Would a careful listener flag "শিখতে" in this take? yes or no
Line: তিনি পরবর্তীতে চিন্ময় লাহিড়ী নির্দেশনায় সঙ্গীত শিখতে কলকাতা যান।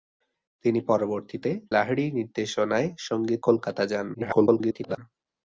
yes